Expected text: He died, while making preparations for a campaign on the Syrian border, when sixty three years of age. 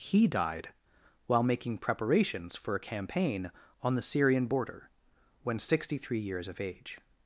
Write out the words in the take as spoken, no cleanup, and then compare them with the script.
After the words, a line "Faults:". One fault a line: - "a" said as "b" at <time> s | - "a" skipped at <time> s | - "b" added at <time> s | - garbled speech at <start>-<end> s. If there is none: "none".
He died, while making preparations for a campaign on the Syrian border, when sixty three years of age.
Faults:
none